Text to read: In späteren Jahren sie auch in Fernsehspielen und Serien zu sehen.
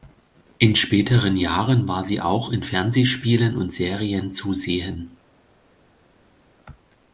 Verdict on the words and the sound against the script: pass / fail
fail